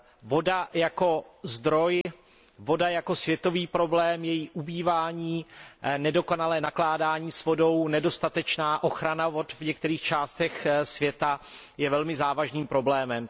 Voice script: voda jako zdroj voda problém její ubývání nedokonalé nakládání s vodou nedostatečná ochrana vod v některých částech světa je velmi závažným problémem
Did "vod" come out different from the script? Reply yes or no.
no